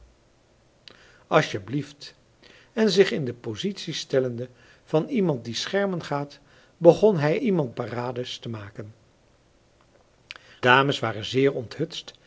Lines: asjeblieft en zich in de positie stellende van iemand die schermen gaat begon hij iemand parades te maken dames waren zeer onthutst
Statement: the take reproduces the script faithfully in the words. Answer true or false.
true